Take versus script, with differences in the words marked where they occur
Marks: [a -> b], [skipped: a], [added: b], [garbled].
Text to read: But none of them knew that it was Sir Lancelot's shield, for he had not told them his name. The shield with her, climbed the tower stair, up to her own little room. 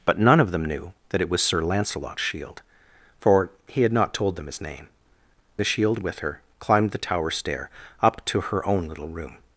But none of them knew that it was Sir Lancelot's shield, for he had not told them his name. The shield with her, climbed the tower stair, up to her own little room.